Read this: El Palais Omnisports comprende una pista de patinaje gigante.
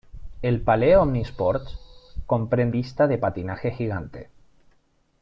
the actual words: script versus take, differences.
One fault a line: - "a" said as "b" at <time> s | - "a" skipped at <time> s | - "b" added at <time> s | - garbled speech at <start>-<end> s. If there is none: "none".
- "una" skipped at 2.8 s